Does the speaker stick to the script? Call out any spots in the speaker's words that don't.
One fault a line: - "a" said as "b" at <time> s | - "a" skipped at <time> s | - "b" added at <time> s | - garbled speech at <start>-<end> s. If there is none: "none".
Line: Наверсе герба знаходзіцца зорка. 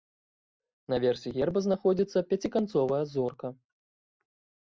- "пяціканцовая" added at 2.3 s